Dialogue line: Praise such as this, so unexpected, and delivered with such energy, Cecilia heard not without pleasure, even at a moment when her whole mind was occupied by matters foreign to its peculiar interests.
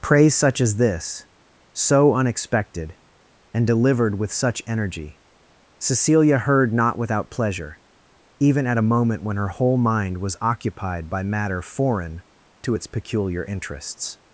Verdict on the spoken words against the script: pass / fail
fail